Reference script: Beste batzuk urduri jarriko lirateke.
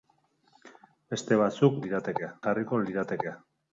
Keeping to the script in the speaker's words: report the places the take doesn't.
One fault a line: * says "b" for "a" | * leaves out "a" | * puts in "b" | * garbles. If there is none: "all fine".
* says "lirateke" for "urduri"